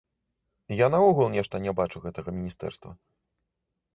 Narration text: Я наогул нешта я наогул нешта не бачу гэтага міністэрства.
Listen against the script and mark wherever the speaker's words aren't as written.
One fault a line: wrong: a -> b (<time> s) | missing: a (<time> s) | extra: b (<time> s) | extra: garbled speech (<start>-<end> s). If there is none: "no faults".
missing: я наогул нешта (1.6 s)